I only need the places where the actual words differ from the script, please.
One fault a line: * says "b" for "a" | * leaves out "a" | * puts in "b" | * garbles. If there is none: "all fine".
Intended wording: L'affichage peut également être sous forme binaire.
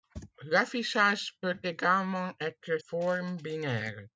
* leaves out "sous"